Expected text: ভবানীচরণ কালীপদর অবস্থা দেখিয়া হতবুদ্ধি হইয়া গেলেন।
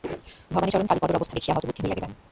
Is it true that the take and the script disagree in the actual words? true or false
false